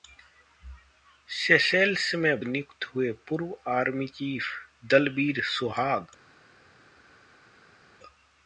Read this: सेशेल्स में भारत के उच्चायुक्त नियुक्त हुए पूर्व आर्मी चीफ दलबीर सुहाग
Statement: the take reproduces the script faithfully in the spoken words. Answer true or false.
false